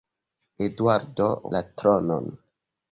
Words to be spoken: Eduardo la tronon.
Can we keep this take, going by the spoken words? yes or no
yes